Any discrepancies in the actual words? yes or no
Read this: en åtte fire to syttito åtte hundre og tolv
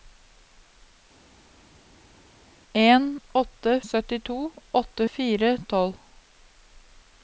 yes